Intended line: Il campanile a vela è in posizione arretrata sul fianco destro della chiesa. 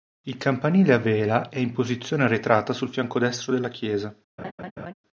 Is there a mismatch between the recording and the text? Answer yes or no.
no